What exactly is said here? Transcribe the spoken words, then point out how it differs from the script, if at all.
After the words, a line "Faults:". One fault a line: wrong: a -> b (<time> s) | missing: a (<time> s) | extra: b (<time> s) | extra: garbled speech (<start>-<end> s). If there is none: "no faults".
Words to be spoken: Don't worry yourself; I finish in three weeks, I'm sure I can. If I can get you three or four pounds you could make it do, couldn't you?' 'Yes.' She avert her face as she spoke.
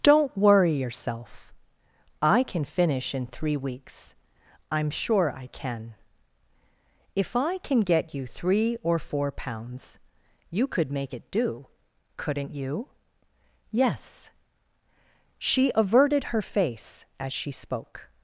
Don't worry yourself; I can finish in three weeks, I'm sure I can. If I can get you three or four pounds you could make it do, couldn't you?' 'Yes.' She averted her face as she spoke.
Faults:
extra: can (2.4 s)
wrong: avert -> averted (15.7 s)